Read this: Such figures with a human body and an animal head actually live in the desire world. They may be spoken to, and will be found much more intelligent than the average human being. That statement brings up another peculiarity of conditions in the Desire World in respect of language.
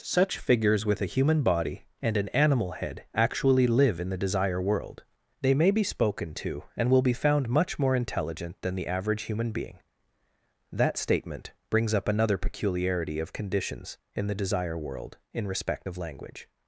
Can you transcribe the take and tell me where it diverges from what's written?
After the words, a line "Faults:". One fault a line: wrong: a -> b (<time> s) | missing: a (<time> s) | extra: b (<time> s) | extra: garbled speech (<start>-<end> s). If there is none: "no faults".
Such figures with a human body and an animal head actually live in the desire world. They may be spoken to, and will be found much more intelligent than the average human being. That statement brings up another peculiarity of conditions in the Desire World in respect of language.
Faults:
no faults